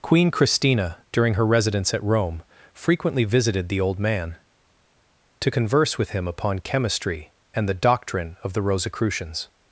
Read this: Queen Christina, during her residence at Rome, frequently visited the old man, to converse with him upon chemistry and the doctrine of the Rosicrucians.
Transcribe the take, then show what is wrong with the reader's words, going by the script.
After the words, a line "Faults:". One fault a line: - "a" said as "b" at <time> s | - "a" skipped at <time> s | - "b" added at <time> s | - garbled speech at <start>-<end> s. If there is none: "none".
Queen Christina, during her residence at Rome, frequently visited the old man, to converse with him upon chemistry and the doctrine of the Rosicrucians.
Faults:
none